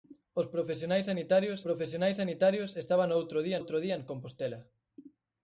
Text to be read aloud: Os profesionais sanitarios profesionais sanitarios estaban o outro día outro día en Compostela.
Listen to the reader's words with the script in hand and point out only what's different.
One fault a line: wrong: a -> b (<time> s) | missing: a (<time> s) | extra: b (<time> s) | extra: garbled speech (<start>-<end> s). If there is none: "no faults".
no faults